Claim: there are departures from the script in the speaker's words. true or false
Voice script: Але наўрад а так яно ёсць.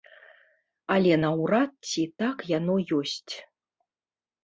true